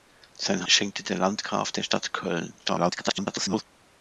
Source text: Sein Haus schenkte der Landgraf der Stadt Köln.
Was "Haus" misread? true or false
true